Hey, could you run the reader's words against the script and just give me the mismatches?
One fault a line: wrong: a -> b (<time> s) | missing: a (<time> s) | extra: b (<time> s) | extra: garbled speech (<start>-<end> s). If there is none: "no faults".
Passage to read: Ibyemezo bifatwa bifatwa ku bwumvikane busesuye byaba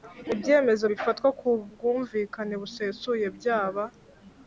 missing: bifatwa (1.3 s)